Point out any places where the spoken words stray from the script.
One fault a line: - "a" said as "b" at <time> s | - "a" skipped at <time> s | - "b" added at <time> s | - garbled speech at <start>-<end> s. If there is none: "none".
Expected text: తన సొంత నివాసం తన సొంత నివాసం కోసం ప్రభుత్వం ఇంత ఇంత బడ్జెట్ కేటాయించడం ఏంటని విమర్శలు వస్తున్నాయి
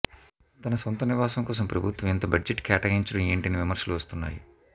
- "తన సొంత నివాసం" skipped at 1.4 s
- "ఇంత" skipped at 2.3 s